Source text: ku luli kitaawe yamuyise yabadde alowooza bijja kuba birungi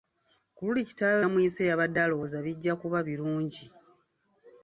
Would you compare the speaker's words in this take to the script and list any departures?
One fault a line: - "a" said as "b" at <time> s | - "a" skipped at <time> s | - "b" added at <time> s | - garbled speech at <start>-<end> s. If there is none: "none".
none